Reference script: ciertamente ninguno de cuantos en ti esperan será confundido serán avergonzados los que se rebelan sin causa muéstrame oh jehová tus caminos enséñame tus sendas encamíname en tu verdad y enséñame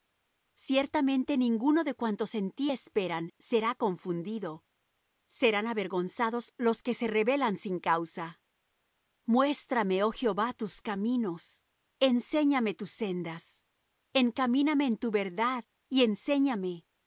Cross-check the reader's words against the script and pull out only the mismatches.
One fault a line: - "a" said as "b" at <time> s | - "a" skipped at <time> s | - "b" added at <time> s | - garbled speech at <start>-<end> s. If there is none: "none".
none